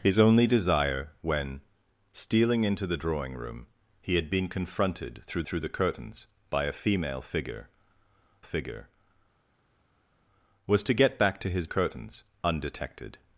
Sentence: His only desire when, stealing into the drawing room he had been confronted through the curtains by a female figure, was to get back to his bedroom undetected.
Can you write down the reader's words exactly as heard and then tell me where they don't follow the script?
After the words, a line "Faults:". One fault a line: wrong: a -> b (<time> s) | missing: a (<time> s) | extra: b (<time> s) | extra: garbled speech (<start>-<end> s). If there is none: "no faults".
His only desire when, stealing into the drawing room he had been confronted through through the curtains by a female figure figure, was to get back to his curtains undetected.
Faults:
extra: through (5.4 s)
extra: figure (8.4 s)
wrong: bedroom -> curtains (11.6 s)